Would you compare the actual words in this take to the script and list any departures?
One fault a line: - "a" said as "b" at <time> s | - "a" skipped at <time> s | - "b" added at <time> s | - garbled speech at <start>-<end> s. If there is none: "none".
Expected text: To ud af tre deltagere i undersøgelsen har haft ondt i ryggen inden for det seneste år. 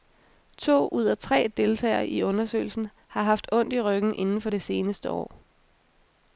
none